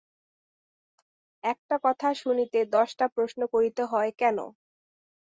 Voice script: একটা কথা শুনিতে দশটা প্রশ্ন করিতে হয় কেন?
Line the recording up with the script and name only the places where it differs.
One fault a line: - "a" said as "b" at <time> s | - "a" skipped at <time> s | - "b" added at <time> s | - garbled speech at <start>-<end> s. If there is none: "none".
none